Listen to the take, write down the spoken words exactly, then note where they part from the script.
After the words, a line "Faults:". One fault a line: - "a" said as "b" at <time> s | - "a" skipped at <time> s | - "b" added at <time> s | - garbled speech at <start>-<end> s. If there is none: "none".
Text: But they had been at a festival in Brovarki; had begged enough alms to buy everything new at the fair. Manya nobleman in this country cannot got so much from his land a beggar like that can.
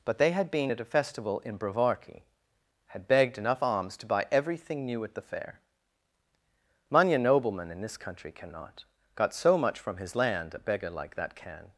But they had been at a festival in Brovarki; had begged enough alms to buy everything new at the fair. Manya nobleman in this country cannot got so much from his land a beggar like that can.
Faults:
none